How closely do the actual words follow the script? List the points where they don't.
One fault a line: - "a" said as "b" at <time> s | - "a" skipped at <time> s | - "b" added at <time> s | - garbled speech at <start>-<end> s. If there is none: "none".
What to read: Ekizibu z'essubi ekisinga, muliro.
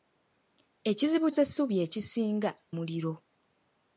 none